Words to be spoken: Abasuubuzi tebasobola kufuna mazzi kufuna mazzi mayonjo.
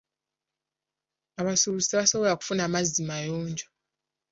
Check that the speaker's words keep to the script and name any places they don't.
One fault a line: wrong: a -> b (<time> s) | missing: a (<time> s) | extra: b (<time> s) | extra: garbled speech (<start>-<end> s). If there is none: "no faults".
missing: kufuna mazzi (3.0 s)